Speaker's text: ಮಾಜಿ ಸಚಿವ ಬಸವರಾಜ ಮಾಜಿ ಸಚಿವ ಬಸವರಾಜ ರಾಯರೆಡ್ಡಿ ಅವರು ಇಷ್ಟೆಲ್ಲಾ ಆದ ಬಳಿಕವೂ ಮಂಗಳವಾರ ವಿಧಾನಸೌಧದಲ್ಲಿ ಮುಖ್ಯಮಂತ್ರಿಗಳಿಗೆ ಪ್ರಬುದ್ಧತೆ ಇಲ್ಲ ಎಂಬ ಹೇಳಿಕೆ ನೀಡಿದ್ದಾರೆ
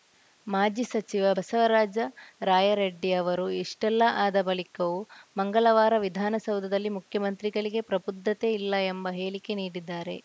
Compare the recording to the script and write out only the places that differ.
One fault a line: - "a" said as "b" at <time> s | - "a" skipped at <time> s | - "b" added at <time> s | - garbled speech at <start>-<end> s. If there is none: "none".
- "ಮಾಜಿ ಸಚಿವ ಬಸವರಾಜ" skipped at 2.0 s